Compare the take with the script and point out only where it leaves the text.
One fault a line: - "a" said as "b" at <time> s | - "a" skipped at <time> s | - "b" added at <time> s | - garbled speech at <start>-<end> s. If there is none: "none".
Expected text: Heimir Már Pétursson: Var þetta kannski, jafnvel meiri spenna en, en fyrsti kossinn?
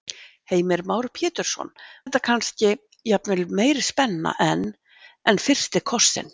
- "Var" skipped at 1.7 s